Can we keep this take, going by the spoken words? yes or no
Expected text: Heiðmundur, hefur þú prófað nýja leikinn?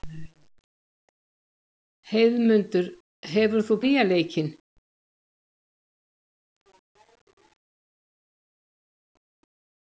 no